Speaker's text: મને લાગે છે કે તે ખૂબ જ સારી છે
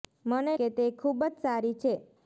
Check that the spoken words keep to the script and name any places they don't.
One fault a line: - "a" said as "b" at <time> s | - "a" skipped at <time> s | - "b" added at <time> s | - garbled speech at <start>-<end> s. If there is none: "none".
- "લાગે છે" skipped at 0.5 s